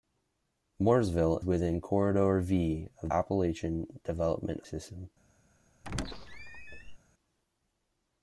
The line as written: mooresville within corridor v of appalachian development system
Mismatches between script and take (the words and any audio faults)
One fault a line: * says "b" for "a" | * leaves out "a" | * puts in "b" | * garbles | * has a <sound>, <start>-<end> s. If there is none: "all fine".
* has a squeak, 5.8-7.0 s